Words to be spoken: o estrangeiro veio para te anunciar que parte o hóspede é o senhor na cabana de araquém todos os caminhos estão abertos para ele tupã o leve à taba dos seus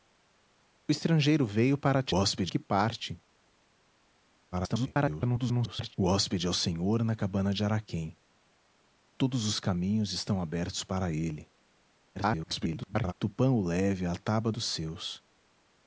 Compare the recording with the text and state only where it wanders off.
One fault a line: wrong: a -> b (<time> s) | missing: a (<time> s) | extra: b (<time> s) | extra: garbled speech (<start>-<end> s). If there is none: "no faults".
wrong: anunciar -> hóspede (2.1 s)
extra: garbled speech (4.5-5.9 s)
extra: garbled speech (12.1-13.1 s)